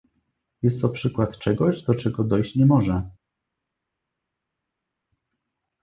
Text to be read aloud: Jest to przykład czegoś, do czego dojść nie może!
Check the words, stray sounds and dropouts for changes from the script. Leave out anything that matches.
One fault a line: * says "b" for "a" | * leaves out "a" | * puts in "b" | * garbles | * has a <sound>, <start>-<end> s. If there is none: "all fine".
all fine